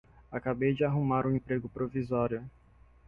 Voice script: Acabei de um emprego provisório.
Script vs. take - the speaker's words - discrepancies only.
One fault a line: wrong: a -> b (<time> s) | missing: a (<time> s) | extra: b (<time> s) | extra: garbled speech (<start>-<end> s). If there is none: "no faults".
extra: arrumar (0.8 s)